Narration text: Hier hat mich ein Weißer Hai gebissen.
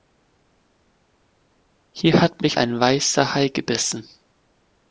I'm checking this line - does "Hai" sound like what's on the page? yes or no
yes